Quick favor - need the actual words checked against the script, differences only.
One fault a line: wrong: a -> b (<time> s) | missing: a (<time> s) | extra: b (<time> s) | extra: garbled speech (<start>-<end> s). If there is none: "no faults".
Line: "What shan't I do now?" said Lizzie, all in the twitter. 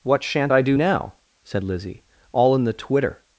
no faults